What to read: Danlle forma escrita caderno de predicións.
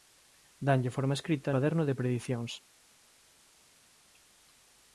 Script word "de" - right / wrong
right